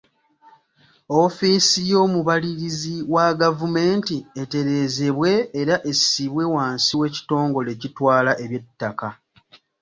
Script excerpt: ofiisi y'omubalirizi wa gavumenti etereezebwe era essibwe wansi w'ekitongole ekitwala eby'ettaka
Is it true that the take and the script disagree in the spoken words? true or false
false